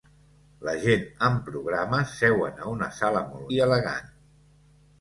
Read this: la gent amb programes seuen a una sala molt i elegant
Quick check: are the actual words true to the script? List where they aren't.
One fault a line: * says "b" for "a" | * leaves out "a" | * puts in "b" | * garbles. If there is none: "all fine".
all fine